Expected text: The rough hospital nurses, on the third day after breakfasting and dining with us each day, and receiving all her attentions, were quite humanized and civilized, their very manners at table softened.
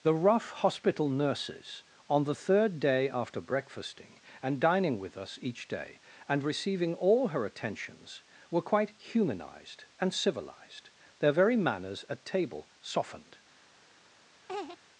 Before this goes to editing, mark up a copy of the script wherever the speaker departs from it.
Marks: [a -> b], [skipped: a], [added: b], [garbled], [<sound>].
The rough hospital nurses, on the third day after breakfasting and dining with us each day, and receiving all her attentions, were quite humanized and civilized, their very manners at table softened. [laugh]